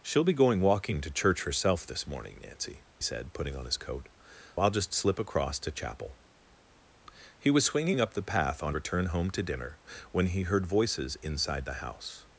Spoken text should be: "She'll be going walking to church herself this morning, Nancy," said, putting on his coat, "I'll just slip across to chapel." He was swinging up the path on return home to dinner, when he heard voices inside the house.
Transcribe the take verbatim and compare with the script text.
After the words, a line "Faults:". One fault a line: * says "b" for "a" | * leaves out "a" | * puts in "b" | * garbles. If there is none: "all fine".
"She'll be going walking to church herself this morning, Nancy," said, putting on his coat, "I'll just slip across to chapel." He was swinging up the path on return home to dinner, when he heard voices inside the house.
Faults:
all fine